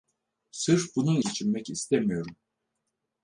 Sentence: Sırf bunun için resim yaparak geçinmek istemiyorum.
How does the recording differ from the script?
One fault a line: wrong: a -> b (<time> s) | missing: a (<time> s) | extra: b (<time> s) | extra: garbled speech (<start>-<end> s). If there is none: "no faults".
missing: için resim yaparak (1.2 s)